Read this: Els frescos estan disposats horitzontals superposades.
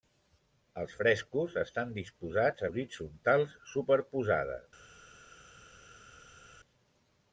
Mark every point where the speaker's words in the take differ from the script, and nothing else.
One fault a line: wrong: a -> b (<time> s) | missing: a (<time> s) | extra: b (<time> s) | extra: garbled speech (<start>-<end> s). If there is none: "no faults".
no faults